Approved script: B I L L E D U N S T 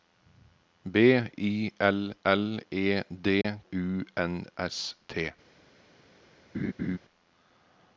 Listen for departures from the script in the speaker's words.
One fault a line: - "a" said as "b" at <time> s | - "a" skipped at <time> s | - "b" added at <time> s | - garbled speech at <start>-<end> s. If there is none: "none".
none